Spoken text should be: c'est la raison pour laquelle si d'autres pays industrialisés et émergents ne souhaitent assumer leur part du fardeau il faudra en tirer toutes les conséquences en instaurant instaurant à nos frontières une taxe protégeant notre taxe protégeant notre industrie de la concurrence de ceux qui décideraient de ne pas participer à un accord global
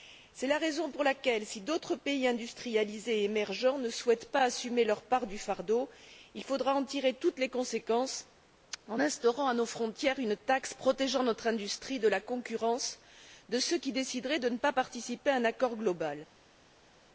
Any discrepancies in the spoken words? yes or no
yes